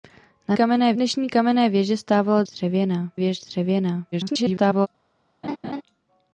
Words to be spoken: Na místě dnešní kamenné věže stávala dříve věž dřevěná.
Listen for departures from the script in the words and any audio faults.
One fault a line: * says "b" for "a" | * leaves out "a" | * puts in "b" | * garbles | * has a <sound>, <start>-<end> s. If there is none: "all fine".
* says "kamenné" for "místě"
* says "dřevěná" for "dříve"
* garbles
* has a laugh, 5.4-5.8 s